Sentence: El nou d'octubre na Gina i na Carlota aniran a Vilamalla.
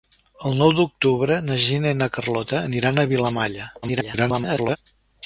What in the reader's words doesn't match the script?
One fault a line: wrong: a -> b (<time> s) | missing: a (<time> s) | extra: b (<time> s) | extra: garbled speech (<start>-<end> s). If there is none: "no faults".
extra: garbled speech (3.8-4.8 s)